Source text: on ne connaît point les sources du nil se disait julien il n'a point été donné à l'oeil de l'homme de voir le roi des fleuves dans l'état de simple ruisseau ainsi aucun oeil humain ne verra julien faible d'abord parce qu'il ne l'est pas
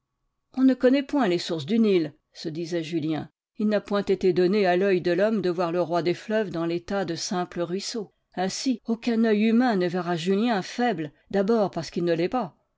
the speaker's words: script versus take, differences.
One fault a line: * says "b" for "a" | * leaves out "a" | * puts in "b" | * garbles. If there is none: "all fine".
all fine